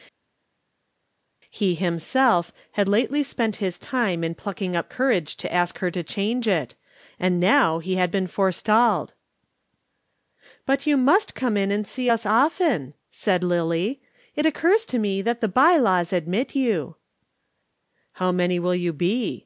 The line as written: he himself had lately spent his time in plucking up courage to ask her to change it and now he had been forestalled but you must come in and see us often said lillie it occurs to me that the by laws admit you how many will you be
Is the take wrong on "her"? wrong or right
right